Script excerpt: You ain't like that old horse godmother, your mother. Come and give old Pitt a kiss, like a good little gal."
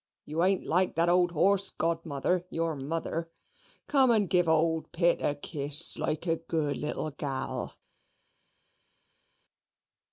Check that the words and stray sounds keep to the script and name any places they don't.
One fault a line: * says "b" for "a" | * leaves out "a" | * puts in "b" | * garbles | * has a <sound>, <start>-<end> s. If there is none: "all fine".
all fine